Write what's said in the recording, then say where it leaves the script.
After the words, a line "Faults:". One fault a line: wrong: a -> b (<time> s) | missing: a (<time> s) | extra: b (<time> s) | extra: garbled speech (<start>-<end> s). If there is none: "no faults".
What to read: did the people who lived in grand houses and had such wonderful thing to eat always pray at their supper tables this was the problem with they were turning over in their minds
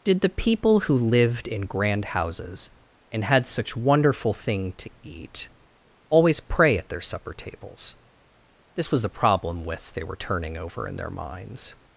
did the people who lived in grand houses and had such wonderful thing to eat always pray at their supper tables this was the problem with they were turning over in their minds
Faults:
no faults